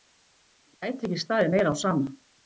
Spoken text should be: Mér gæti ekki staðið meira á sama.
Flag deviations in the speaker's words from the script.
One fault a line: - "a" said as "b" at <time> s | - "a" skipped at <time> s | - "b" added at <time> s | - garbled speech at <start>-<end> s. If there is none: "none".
none